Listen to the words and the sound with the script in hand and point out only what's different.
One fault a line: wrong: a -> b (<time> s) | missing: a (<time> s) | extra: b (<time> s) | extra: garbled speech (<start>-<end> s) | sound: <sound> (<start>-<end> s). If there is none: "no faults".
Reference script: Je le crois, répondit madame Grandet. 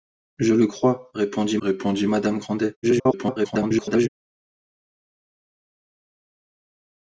extra: répondit (1.6 s)
extra: garbled speech (2.8-4.1 s)